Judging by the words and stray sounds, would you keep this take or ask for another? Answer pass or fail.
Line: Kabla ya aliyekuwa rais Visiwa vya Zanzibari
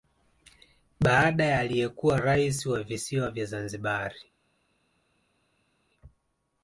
fail